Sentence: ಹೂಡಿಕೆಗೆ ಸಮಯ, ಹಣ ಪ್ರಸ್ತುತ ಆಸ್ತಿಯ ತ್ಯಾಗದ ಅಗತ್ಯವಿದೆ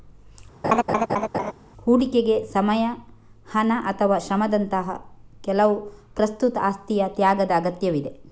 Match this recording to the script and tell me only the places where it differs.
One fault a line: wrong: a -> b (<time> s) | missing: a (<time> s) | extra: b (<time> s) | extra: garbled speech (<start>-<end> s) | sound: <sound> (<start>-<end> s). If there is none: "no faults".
sound: laugh (0.6-1.5 s)
extra: ಅಥವಾ ಶ್ರಮದಂತಹ ಕೆಲವು (3.8 s)